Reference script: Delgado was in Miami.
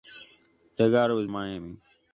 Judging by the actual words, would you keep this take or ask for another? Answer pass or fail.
pass